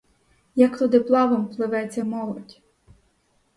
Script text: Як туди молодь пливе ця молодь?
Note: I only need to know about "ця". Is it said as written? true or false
true